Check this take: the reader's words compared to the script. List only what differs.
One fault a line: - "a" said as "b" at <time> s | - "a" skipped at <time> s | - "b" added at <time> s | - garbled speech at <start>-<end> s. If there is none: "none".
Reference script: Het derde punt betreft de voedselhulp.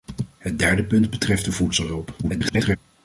- garbled speech at 2.2-2.8 s